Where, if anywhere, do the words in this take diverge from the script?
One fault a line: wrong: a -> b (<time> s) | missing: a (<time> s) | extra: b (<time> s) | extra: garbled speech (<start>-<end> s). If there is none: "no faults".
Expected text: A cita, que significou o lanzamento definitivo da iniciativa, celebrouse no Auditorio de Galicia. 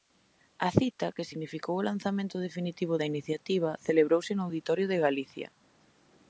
no faults